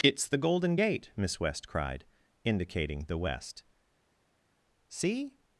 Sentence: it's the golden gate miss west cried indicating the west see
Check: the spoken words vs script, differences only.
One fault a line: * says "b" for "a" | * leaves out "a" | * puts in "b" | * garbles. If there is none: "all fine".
all fine